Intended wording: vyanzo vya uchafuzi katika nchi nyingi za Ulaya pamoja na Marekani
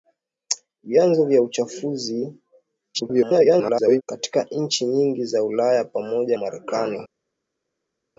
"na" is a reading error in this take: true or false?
true